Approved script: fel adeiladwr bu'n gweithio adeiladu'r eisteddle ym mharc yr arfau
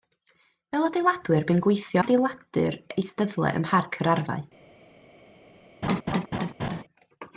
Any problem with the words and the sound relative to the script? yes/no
yes